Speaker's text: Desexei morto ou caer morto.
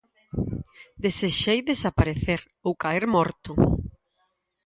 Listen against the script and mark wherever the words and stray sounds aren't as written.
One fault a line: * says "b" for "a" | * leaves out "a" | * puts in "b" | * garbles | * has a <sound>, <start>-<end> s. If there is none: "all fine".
* says "desaparecer" for "morto"